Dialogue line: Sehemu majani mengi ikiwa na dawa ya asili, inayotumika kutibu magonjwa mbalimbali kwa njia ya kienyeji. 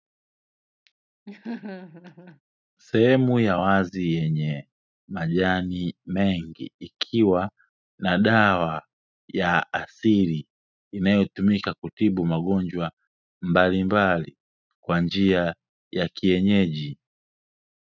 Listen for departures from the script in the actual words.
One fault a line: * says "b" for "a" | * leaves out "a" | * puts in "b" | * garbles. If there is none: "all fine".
* puts in "ya wazi yenye"